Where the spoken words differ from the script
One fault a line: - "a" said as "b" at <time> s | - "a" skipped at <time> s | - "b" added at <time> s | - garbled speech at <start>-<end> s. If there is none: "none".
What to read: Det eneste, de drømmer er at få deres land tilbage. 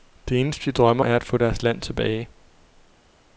none